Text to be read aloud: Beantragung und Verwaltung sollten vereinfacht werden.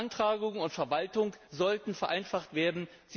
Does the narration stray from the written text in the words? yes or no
no